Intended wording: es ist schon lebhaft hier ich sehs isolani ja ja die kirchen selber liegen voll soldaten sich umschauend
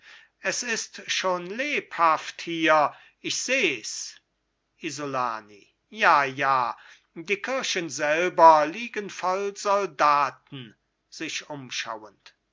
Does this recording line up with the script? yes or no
yes